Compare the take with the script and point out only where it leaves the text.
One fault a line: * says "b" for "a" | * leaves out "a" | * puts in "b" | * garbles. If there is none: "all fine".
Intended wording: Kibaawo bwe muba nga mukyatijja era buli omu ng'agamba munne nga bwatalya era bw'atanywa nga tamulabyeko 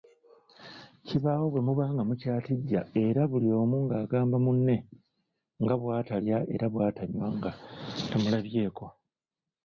all fine